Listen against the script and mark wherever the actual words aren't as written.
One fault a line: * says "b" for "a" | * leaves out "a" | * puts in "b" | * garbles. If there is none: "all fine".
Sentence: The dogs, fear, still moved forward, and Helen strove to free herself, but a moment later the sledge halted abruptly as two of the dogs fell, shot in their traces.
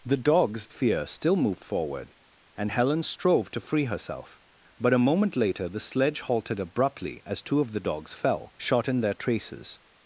all fine